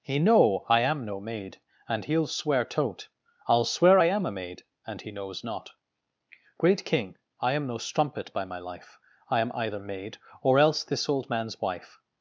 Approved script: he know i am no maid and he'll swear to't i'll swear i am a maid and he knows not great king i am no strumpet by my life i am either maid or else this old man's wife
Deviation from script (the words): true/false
false